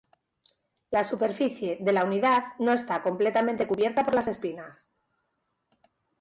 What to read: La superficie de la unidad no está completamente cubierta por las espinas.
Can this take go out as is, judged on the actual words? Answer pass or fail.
pass